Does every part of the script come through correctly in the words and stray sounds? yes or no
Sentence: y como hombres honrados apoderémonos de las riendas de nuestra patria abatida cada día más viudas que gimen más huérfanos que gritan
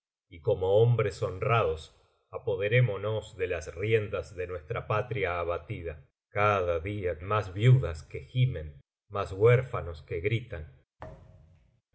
no